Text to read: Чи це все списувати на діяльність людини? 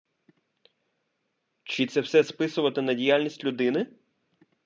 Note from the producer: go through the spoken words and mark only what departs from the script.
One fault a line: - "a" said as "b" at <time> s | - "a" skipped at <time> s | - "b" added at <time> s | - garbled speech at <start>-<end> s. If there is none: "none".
none